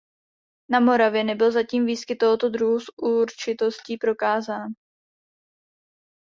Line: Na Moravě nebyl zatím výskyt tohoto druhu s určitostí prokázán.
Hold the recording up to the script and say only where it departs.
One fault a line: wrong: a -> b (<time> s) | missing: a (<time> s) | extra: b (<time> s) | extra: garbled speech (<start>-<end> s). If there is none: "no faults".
no faults